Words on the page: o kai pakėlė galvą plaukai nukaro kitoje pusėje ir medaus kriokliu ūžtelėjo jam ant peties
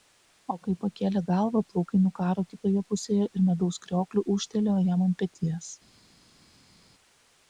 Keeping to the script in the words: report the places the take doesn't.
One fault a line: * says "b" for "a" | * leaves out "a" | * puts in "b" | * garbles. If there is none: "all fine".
all fine